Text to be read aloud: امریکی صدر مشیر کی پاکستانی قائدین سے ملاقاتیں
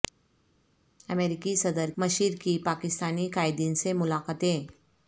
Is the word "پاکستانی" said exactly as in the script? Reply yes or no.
yes